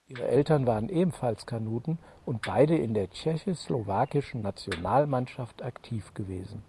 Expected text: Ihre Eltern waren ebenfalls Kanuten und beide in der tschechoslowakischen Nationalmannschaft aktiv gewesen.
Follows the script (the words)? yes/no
yes